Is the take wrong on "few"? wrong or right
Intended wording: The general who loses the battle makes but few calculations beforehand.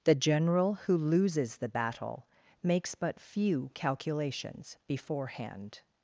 right